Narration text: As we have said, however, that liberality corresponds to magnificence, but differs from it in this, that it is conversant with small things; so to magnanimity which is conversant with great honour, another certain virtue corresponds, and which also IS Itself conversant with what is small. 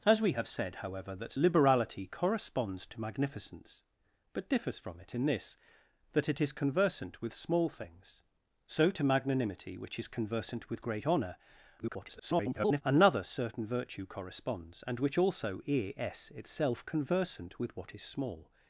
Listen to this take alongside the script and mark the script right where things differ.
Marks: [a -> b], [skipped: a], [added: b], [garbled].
As we have said, however, that liberality corresponds to magnificence, but differs from it in this, that it is conversant with small things; so to magnanimity which is conversant with great honour, [garbled] another certain virtue corresponds, and which also IS Itself conversant with what is small.